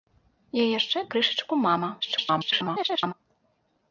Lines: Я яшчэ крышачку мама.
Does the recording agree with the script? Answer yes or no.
no